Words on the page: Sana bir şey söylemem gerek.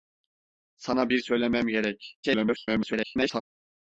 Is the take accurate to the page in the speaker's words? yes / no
no